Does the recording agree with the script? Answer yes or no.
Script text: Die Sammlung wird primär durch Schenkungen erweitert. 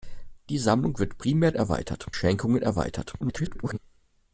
no